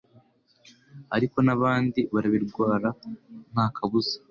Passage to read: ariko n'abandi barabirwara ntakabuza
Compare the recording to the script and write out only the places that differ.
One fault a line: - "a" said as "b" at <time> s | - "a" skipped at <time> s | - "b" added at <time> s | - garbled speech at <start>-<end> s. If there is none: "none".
none